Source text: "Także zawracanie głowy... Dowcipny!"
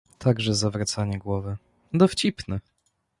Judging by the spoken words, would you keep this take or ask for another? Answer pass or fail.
pass